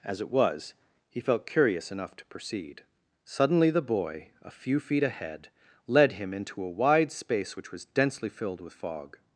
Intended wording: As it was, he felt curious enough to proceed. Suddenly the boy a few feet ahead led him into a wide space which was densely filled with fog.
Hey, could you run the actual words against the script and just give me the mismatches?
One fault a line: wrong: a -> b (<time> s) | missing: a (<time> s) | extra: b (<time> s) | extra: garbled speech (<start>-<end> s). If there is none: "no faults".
no faults